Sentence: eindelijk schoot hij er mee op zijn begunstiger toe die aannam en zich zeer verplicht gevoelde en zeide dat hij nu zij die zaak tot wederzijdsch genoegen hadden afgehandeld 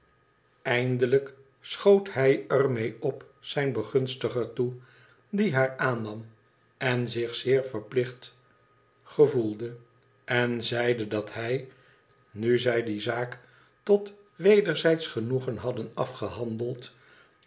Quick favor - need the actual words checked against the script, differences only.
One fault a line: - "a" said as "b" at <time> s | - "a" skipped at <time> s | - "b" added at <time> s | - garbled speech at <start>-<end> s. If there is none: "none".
- "haar" added at 5.5 s